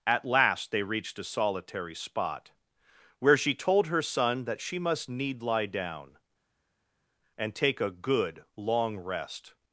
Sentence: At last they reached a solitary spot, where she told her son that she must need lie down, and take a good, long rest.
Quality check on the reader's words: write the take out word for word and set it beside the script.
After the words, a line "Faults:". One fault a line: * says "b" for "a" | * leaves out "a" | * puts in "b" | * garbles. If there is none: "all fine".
At last they reached a solitary spot, where she told her son that she must need lie down, and take a good, long rest.
Faults:
all fine